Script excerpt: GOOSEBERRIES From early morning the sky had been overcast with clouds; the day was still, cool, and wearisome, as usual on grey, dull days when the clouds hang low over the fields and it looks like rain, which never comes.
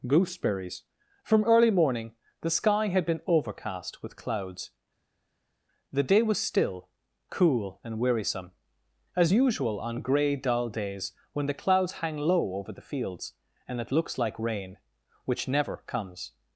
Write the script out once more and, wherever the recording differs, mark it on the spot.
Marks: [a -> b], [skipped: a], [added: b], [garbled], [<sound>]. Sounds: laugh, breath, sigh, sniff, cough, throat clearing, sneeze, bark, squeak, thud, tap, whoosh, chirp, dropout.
GOOSEBERRIES From early morning the sky had been overcast with clouds; the day was still, cool, and wearisome, as usual on grey, dull days when the clouds hang low over the fields and it looks like rain, which never comes.